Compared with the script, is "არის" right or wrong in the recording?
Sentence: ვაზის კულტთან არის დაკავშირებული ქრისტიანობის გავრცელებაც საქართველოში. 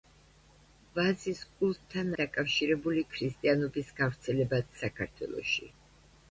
wrong